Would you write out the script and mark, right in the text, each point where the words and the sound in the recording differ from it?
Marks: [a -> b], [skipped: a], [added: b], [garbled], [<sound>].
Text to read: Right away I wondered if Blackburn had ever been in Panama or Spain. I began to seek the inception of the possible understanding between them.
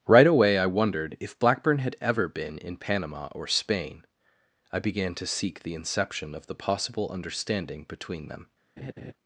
Right away I wondered if Blackburn had ever been in Panama or Spain. I began to seek the inception of the possible understanding between them. [laugh]